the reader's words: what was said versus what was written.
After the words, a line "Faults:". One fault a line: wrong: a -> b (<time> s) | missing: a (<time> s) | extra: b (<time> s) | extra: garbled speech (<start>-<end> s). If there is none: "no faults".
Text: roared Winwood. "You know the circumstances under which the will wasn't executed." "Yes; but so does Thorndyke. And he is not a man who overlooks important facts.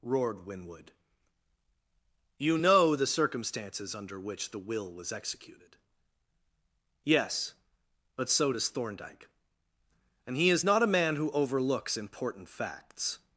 roared Winwood. "You know the circumstances under which the will was executed." "Yes; but so does Thorndyke. And he is not a man who overlooks important facts.
Faults:
wrong: wasn't -> was (4.9 s)